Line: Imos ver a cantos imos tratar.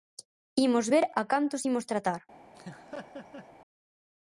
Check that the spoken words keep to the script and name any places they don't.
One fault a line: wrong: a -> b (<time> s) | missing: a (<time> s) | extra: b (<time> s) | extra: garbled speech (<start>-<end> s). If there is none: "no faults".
no faults